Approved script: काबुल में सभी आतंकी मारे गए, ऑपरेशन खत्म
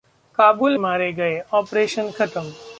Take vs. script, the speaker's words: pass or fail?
fail